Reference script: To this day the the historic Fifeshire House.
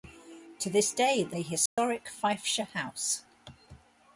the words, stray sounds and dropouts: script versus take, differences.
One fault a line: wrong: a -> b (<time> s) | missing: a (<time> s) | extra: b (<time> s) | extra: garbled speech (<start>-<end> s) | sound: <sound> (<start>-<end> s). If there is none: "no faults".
sound: dropout (1.7-1.8 s)